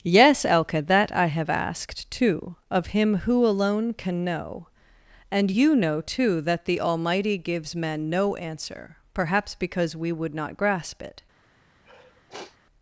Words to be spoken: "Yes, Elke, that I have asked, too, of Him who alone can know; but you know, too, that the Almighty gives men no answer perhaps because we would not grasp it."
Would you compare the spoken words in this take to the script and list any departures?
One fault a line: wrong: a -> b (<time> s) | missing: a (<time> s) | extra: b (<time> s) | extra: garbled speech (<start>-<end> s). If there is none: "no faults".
wrong: but -> and (5.3 s)